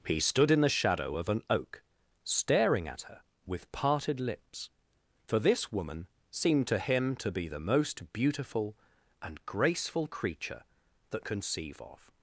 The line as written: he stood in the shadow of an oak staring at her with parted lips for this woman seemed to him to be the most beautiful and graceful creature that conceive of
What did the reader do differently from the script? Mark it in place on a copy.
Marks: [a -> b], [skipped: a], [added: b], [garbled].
he stood in the shadow of an oak staring at her with parted lips for this woman seemed to him to be the most beautiful and graceful creature that conceive of